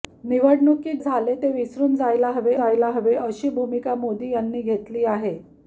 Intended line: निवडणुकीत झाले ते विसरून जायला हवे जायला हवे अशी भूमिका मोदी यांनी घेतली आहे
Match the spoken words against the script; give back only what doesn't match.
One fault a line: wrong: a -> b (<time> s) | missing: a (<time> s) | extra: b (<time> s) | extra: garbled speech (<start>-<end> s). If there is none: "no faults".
no faults